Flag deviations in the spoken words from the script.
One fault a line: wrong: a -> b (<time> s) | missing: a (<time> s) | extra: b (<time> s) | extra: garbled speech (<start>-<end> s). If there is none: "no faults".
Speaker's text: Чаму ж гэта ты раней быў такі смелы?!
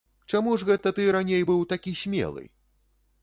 no faults